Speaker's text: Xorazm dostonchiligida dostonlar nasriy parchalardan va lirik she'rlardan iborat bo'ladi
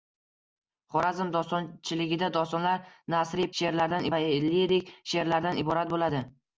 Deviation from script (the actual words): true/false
true